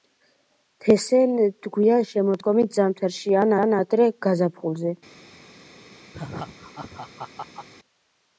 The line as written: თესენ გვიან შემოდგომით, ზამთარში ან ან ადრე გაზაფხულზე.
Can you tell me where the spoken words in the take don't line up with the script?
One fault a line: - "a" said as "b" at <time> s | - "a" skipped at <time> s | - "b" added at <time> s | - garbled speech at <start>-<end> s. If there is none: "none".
none